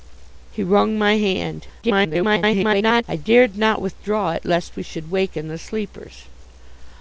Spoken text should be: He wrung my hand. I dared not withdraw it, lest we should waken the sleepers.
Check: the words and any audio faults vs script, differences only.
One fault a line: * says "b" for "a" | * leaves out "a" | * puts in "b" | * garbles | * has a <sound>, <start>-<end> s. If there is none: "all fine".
* garbles